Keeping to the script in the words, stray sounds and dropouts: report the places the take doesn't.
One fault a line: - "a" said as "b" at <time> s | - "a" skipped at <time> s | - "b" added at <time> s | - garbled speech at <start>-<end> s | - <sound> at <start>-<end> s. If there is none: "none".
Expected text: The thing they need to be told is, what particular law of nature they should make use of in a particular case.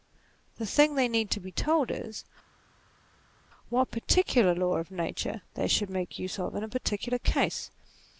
none